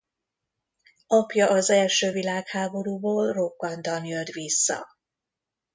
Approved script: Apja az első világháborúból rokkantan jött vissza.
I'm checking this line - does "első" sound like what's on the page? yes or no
yes